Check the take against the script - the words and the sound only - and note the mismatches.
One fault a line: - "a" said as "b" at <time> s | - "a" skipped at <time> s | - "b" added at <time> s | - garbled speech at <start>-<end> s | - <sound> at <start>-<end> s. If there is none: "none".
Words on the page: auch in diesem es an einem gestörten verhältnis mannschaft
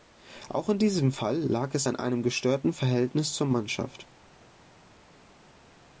- "fall lag" added at 1.1 s
- "zur" added at 3.3 s